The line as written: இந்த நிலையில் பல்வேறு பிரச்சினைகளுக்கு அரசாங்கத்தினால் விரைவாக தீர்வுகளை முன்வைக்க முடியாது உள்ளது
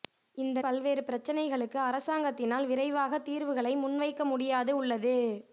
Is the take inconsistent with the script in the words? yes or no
yes